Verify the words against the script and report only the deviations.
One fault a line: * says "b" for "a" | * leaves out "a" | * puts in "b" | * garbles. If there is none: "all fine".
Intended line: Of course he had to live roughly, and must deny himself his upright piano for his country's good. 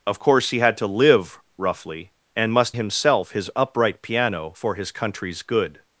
* leaves out "deny"